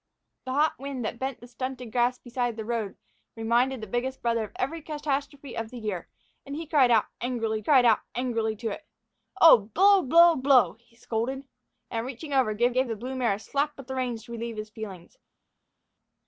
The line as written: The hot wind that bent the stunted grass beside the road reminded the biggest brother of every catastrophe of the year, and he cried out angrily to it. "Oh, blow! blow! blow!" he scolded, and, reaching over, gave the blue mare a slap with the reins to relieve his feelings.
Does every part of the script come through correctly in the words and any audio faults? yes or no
no